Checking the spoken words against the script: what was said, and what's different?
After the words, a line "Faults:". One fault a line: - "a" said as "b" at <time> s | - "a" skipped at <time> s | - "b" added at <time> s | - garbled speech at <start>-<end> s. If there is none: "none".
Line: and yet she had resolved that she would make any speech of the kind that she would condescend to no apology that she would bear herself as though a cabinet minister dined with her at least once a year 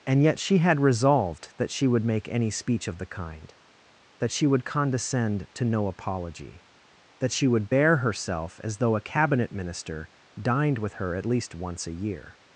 and yet she had resolved that she would make any speech of the kind that she would condescend to no apology that she would bear herself as though a cabinet minister dined with her at least once a year
Faults:
none